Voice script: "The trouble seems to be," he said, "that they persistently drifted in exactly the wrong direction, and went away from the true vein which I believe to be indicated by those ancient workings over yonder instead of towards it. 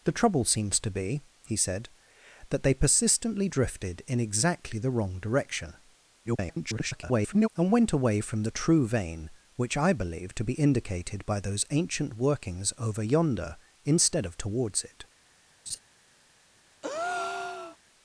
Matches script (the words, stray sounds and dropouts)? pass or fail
fail